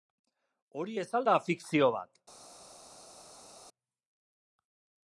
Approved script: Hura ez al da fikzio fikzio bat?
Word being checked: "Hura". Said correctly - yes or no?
no